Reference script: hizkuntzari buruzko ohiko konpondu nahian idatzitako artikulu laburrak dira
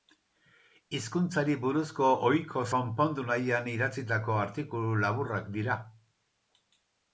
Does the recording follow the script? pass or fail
pass